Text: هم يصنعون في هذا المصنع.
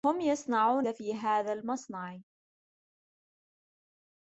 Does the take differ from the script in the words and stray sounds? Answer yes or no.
no